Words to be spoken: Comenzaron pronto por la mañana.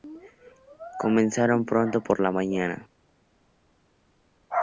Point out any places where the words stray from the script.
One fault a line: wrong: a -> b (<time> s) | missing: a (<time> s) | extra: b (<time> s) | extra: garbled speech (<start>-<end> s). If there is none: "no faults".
no faults